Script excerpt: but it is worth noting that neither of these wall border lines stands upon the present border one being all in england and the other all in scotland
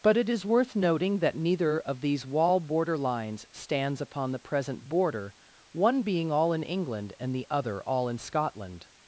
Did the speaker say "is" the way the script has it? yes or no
yes